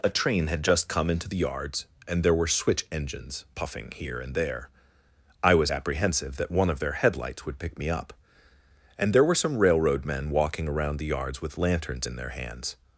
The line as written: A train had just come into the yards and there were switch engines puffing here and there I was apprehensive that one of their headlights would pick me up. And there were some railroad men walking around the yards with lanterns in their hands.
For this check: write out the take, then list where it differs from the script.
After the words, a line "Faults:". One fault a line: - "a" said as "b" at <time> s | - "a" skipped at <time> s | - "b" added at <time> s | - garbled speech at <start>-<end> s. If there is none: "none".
A train had just come into the yards and there were switch engines puffing here and there I was apprehensive that one of their headlights would pick me up. And there were some railroad men walking around the yards with lanterns in their hands.
Faults:
none